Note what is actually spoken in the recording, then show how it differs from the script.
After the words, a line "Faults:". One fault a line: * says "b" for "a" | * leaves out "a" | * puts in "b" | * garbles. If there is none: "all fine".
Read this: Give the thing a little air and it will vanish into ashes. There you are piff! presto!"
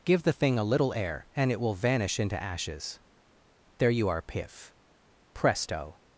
Give the thing a little air and it will vanish into ashes. There you are piff! presto!"
Faults:
all fine